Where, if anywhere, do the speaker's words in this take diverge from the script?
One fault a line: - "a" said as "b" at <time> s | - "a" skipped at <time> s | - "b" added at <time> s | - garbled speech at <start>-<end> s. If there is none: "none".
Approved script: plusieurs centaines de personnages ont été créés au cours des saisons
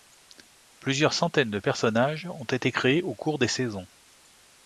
none